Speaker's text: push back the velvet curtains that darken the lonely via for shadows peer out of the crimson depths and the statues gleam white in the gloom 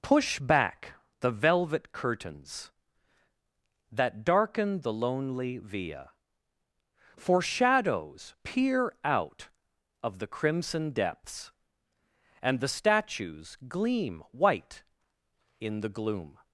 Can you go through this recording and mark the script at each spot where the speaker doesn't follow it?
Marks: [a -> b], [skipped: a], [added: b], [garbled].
push back the velvet curtains that darken the lonely via for shadows peer out of the crimson depths and the statues gleam white in the gloom